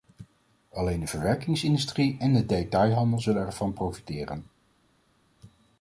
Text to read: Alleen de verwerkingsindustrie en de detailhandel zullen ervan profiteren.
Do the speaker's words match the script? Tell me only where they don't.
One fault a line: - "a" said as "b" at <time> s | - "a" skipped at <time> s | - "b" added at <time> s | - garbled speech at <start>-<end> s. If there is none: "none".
none